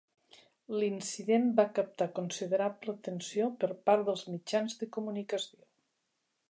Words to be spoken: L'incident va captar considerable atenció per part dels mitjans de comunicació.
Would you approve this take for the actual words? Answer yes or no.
yes